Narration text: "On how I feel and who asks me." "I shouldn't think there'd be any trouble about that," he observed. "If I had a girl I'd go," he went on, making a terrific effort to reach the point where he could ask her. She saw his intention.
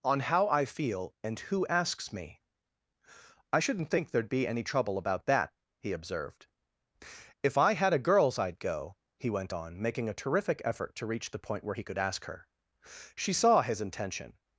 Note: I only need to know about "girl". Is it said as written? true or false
false